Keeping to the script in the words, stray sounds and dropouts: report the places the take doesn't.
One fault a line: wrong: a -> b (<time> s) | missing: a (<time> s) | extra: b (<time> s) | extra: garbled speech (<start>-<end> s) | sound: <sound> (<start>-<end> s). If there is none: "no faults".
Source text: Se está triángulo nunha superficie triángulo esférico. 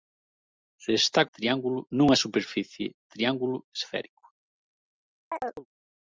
sound: chirp (5.3-5.7 s)